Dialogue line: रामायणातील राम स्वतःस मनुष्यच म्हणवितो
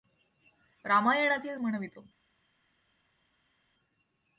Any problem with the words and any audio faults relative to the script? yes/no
yes